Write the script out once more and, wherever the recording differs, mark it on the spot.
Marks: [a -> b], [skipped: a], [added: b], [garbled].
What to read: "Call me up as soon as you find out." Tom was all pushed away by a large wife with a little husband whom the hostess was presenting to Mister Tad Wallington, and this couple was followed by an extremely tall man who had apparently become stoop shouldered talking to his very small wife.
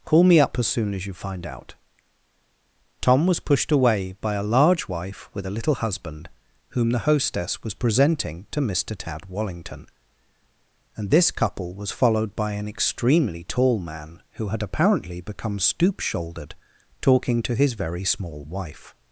"Call me up as soon as you find out." Tom was [skipped: all] pushed away by a large wife with a little husband whom the hostess was presenting to Mister Tad Wallington, and this couple was followed by an extremely tall man who had apparently become stoop shouldered talking to his very small wife.